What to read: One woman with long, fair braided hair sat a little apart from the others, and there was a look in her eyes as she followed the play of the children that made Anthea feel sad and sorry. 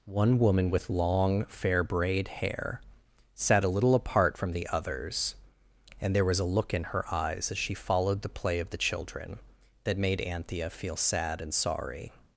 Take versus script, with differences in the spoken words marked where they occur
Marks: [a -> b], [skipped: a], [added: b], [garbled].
One woman with long, fair [braided -> braid] hair sat a little apart from the others, and there was a look in her eyes as she followed the play of the children that made Anthea feel sad and sorry.